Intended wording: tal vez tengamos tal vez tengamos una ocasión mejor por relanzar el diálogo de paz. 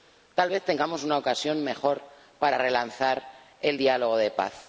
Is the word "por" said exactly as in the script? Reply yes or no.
no